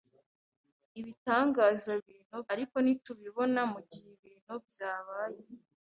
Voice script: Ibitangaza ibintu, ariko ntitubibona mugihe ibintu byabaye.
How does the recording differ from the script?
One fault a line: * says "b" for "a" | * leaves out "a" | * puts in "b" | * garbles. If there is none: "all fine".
all fine